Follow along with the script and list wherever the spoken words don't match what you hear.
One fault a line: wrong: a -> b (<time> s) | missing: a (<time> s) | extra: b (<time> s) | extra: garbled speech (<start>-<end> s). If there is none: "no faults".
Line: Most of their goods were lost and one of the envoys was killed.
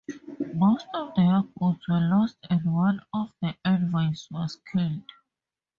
no faults